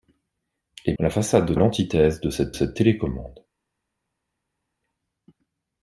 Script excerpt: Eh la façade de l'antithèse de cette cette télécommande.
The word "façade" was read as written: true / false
true